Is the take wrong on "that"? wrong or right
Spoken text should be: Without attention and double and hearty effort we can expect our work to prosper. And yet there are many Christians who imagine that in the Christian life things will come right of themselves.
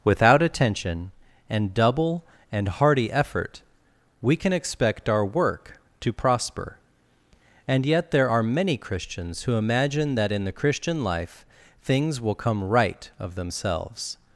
right